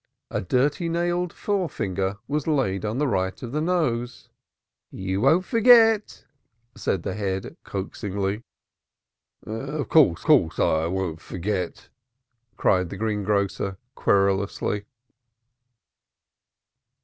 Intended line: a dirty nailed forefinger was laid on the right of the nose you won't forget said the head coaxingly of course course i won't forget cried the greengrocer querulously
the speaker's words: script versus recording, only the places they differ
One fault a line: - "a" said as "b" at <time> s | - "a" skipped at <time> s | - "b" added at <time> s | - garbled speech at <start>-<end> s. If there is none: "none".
none